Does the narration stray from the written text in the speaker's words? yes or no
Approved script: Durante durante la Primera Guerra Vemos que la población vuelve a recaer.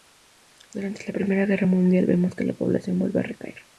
yes